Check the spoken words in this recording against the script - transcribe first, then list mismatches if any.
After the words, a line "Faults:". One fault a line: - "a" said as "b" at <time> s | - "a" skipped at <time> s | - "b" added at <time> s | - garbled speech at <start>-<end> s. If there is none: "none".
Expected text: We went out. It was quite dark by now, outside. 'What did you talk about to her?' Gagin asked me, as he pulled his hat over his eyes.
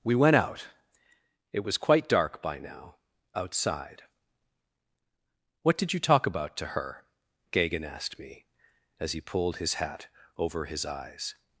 We went out. It was quite dark by now, outside. 'What did you talk about to her?' Gagin asked me, as he pulled his hat over his eyes.
Faults:
none